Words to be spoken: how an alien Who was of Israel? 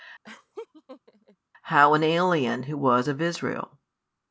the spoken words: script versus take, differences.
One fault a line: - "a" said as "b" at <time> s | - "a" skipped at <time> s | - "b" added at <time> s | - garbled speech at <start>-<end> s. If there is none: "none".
none